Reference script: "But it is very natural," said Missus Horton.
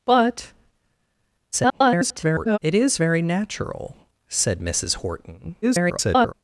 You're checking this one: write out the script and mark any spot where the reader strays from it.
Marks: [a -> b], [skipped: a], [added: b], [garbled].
"But [garbled] it is very natural," said Missus Horton. [garbled]